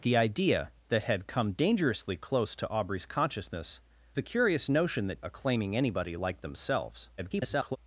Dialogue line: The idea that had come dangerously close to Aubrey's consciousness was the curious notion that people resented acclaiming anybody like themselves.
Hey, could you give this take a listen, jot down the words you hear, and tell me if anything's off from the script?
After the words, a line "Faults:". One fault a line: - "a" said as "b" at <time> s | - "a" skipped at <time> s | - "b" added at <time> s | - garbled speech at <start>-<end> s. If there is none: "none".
The idea that had come dangerously close to Aubrey's consciousness the curious notion that acclaiming anybody like themselves. [garbled]
Faults:
- "was" skipped at 3.8 s
- "people resented" skipped at 5.2 s
- garbled speech at 7.2-7.8 s